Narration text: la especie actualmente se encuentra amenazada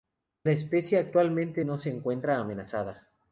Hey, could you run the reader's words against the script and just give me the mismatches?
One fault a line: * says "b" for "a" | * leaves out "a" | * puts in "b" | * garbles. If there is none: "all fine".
* puts in "no"